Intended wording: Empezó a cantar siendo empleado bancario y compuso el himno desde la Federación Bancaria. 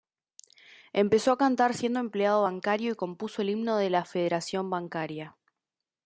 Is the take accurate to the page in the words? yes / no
no